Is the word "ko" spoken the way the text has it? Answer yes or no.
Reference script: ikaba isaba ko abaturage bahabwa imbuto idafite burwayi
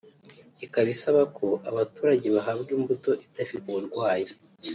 yes